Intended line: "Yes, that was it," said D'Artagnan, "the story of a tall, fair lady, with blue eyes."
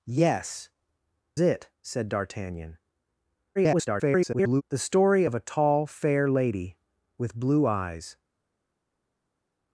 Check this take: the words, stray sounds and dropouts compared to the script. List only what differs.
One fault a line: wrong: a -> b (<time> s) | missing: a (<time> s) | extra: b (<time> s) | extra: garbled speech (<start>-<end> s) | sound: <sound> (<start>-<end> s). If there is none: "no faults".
missing: that was (0.7 s)
extra: garbled speech (3.6-4.6 s)